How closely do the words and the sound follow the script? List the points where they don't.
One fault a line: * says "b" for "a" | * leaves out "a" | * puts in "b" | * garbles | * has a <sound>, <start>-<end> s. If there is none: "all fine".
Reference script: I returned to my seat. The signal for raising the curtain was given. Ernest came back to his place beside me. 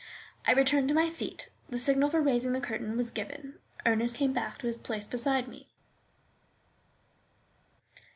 all fine